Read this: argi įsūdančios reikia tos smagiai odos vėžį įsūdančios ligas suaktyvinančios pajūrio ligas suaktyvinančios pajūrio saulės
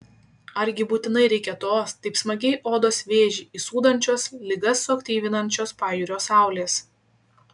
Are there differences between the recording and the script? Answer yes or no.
yes